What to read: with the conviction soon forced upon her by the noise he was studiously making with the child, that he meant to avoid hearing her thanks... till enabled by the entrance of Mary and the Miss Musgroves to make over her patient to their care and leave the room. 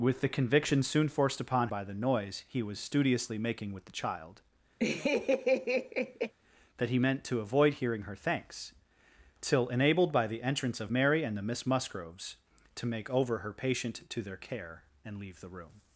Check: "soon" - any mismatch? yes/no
no